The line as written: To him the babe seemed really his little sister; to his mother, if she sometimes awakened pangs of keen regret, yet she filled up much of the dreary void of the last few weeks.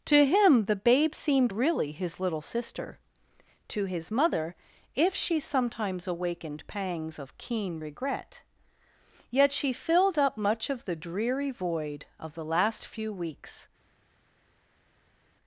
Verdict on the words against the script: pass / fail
pass